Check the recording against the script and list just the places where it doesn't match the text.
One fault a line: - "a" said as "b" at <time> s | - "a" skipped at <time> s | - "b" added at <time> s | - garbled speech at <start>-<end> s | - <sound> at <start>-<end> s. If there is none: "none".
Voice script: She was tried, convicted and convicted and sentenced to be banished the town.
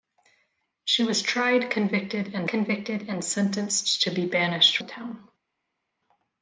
none